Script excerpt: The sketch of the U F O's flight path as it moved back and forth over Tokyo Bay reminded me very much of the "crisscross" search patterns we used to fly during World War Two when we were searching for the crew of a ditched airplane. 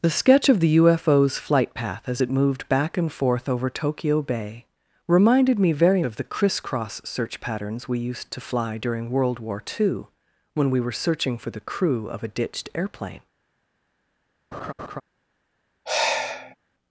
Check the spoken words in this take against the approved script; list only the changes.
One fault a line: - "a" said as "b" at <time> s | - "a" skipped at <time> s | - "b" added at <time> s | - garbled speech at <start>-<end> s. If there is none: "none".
- "much" skipped at 6.0 s